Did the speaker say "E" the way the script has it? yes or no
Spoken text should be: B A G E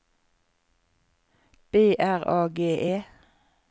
yes